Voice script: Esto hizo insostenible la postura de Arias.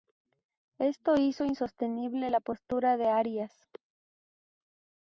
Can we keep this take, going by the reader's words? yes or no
yes